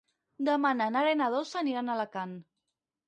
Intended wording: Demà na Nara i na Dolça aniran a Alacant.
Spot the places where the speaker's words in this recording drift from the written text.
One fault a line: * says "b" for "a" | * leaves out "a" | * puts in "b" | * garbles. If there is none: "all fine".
all fine